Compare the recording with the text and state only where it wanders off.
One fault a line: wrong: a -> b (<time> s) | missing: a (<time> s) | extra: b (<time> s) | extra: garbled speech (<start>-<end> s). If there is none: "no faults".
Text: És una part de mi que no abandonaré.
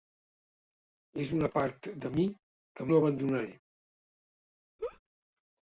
no faults